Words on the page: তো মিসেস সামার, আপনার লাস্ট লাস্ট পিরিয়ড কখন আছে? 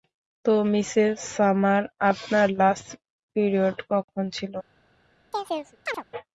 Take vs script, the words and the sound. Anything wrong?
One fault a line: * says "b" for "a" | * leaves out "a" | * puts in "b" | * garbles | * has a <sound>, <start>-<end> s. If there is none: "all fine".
* leaves out "লাস্ট"
* says "ছিল" for "আছে"
* has a chirp, 5.3-6.0 s